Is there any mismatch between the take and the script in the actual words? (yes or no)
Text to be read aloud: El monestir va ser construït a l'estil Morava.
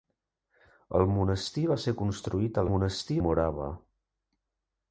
yes